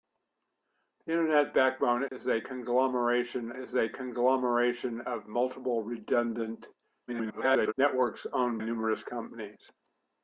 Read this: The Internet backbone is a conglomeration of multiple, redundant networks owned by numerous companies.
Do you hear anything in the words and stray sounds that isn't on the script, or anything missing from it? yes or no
yes